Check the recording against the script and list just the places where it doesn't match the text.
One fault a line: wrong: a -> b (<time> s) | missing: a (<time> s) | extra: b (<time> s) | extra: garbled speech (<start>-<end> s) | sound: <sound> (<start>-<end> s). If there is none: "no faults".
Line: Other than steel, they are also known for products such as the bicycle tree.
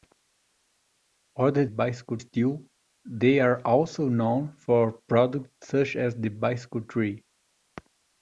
wrong: than -> bicycle (1.7 s)